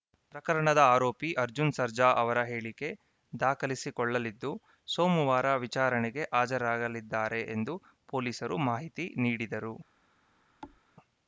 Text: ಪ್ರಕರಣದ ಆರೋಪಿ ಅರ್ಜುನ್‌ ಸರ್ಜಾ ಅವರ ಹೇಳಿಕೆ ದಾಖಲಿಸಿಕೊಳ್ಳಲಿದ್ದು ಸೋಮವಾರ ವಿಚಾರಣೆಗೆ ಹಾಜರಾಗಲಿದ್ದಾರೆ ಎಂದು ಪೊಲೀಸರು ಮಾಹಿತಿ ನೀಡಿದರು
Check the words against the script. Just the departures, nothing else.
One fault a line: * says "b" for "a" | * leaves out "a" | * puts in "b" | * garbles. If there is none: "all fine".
all fine